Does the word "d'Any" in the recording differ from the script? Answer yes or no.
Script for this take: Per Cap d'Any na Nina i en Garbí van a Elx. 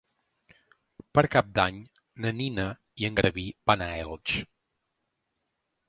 no